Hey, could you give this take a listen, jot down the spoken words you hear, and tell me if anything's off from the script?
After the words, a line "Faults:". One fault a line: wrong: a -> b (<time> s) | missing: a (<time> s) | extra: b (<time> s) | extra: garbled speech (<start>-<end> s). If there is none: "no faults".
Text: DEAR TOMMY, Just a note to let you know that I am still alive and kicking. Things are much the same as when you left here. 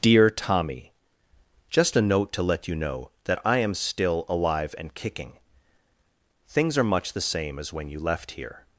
DEAR TOMMY, Just a note to let you know that I am still alive and kicking. Things are much the same as when you left here.
Faults:
no faults